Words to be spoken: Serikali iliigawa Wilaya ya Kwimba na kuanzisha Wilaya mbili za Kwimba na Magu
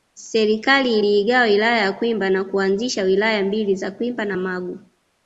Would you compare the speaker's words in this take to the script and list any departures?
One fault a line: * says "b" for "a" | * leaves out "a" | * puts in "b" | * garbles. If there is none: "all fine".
all fine